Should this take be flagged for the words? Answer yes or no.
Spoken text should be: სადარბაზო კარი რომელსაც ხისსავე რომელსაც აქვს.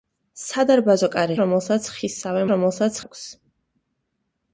no